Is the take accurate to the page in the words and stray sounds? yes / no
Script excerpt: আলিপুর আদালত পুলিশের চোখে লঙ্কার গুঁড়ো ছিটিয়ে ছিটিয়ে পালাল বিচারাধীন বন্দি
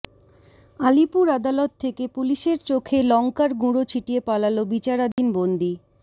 no